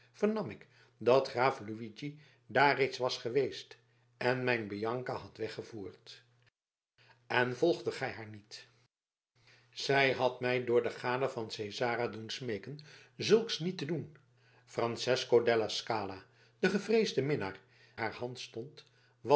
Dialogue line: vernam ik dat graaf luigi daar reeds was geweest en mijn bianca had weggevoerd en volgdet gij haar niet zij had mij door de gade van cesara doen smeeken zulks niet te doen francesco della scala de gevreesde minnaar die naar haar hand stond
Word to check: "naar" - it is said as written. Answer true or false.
false